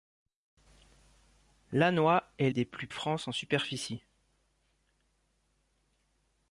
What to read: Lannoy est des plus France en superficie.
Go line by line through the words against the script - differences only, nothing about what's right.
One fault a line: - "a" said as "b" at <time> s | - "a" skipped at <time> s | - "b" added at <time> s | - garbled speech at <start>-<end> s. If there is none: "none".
none